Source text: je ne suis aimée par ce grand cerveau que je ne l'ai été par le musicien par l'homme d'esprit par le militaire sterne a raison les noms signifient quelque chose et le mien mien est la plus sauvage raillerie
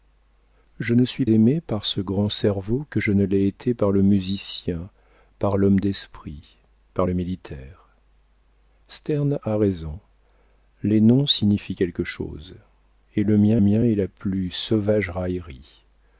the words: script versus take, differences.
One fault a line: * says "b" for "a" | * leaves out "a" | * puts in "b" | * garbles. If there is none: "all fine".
all fine